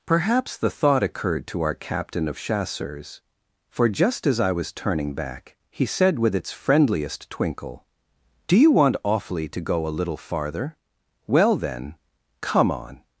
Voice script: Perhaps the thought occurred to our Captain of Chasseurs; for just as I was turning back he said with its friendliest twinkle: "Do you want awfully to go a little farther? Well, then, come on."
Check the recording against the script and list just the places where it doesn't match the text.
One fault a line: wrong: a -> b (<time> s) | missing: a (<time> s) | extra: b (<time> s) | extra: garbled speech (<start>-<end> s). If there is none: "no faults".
no faults